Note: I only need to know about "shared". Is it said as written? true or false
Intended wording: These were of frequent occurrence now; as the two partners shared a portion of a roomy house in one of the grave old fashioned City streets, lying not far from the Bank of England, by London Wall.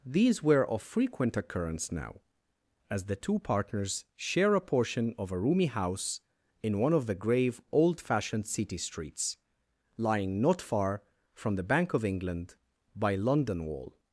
false